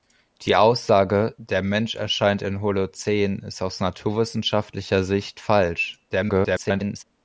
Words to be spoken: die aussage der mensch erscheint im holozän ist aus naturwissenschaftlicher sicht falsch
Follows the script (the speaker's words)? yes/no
no